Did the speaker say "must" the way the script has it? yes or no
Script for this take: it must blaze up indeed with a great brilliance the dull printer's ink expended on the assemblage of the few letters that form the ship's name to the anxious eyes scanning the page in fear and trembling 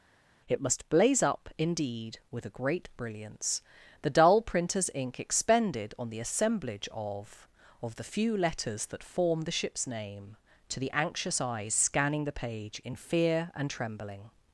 yes